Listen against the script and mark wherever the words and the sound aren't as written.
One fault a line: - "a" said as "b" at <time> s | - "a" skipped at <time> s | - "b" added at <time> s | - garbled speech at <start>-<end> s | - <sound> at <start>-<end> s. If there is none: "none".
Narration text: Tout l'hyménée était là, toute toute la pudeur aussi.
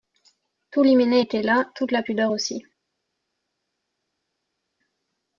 - "toute" skipped at 1.9 s